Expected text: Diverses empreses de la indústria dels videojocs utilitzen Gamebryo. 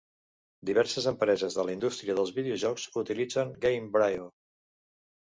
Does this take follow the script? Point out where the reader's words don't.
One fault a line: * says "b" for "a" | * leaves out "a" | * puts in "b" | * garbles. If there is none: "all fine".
all fine